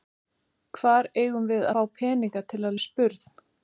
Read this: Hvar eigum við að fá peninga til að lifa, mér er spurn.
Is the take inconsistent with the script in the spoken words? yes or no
yes